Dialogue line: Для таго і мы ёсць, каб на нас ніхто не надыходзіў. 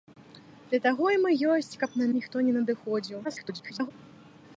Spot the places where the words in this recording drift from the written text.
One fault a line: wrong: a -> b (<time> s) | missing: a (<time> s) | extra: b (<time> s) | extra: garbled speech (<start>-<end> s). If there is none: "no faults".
missing: нас (2.1 s)
extra: garbled speech (3.2-3.9 s)